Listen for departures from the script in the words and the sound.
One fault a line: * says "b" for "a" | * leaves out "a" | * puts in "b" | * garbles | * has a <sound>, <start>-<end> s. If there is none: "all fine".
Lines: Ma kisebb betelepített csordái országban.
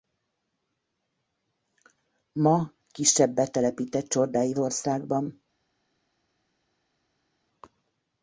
all fine